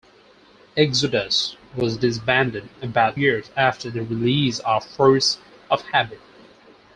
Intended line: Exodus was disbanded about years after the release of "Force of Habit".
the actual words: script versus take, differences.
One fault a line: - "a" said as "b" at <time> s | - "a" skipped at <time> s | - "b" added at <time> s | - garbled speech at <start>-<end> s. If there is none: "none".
none